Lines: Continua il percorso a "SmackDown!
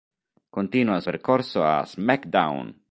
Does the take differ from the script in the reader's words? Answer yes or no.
no